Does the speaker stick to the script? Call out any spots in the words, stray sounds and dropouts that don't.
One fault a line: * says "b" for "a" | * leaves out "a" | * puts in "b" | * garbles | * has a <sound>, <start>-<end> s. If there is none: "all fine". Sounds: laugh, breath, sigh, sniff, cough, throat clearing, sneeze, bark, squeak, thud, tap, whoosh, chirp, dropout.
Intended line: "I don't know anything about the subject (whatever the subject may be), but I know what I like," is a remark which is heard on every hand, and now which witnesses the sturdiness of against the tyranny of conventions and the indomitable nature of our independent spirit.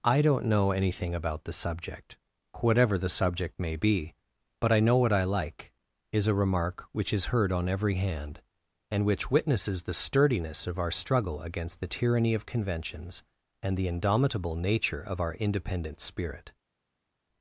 * leaves out "now"
* puts in "our struggle"